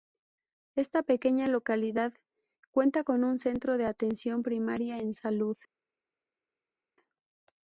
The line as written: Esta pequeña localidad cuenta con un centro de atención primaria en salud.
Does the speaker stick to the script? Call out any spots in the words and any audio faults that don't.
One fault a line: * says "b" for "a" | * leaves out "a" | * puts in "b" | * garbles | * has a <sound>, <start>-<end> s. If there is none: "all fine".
all fine